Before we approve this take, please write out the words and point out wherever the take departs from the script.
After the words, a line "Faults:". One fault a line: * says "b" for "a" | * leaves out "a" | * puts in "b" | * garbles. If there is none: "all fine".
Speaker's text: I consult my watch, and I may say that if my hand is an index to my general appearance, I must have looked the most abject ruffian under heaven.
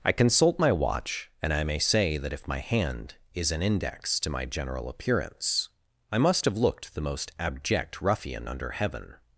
I consult my watch, and I may say that if my hand is an index to my general appearance, I must have looked the most abject ruffian under heaven.
Faults:
all fine